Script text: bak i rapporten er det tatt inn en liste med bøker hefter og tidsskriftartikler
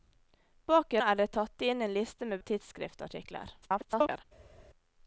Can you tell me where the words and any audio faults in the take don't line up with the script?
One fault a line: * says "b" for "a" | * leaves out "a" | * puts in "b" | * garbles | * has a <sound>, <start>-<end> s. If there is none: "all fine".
* leaves out "rapporten"
* leaves out "bøker hefter"
* garbles